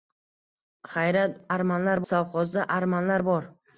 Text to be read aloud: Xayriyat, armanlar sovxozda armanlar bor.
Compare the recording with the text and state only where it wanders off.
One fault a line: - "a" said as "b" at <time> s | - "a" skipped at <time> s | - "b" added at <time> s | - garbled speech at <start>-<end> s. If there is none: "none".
none